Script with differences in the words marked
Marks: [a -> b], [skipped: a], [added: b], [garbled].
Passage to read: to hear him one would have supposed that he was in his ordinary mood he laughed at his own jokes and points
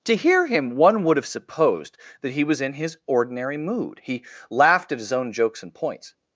to hear him one would have supposed that he was in his ordinary mood he laughed at his own jokes and points